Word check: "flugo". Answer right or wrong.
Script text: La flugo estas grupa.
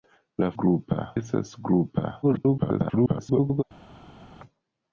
wrong